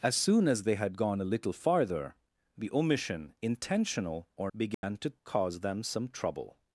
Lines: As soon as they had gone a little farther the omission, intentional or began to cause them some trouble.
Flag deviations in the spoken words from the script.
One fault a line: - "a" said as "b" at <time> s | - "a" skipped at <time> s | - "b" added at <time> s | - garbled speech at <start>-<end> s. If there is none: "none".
none